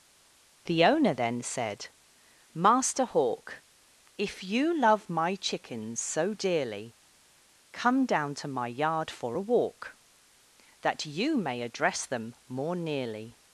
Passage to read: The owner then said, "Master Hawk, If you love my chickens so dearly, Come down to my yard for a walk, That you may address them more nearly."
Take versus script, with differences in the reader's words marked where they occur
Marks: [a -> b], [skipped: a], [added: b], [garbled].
The owner then said, "Master Hawk, If you love my chickens so dearly, Come down to my yard for a walk, That you may address them more nearly."